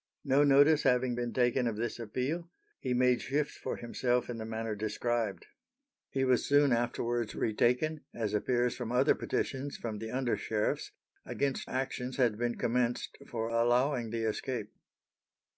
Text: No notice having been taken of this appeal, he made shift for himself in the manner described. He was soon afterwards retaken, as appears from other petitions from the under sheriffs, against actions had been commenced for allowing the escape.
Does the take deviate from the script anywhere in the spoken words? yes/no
no